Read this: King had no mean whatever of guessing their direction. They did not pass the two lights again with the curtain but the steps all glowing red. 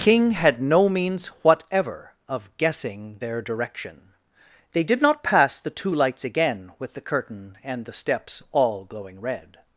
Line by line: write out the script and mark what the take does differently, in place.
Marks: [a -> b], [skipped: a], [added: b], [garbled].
King had no [mean -> means] whatever of guessing their direction. They did not pass the two lights again with the curtain [but -> and] the steps all glowing red.